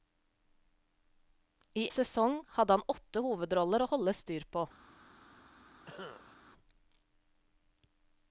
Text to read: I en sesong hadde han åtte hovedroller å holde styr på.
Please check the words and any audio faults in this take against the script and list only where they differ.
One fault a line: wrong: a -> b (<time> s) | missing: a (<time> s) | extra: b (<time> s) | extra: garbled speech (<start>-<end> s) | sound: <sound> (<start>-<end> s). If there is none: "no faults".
missing: en (1.8 s)
sound: cough (5.8-6.4 s)